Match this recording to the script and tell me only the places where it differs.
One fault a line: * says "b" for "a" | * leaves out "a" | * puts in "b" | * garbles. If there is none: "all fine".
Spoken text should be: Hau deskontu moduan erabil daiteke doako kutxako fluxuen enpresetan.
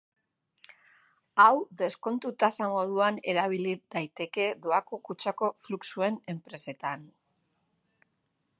* puts in "tasa"